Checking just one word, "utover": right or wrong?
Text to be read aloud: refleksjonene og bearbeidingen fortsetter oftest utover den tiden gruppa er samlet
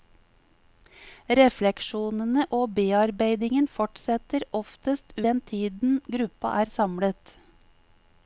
wrong